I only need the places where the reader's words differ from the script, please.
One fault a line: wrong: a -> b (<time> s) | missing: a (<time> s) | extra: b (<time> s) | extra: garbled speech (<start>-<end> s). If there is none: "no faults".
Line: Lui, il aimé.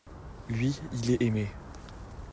extra: est (1.1 s)